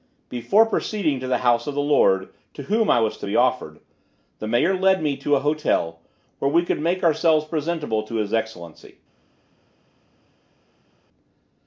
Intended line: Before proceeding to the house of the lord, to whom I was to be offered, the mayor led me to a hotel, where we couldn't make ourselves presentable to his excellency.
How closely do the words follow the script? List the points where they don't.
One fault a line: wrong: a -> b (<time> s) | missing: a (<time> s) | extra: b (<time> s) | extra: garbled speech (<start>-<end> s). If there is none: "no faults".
wrong: couldn't -> could (6.6 s)